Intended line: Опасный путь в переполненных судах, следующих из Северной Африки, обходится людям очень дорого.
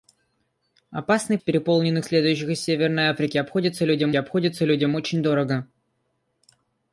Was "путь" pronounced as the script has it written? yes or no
no